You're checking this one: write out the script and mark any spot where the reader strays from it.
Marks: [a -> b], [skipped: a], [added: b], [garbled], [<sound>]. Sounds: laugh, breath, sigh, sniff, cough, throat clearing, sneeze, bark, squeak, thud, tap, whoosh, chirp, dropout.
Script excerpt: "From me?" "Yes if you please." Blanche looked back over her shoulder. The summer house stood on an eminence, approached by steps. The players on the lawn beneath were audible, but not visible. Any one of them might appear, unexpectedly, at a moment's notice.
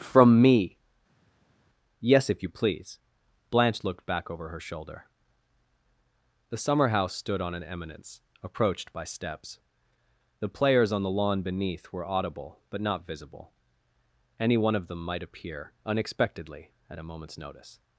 "From me?" "Yes if you please." Blanche looked back over her shoulder. The summer house stood on an eminence, approached by steps. The players on the lawn beneath were audible, but not visible. Any one of them might appear, unexpectedly, at a moment's notice.